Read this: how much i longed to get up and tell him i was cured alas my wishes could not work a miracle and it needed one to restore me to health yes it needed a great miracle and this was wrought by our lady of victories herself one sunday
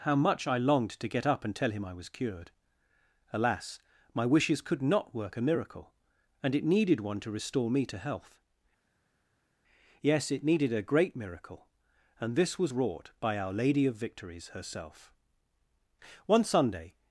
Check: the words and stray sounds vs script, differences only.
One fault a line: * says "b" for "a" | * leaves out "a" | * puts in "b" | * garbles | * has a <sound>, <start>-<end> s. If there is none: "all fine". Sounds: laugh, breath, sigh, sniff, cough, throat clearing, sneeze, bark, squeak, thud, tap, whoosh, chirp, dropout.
all fine